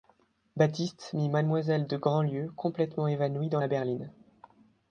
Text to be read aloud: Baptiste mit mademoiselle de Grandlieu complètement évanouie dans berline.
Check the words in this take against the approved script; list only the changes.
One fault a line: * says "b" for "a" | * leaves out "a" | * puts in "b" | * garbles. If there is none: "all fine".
* puts in "la"